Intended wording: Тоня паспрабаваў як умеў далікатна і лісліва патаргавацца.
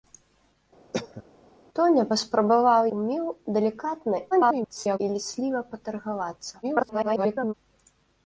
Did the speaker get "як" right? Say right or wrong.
wrong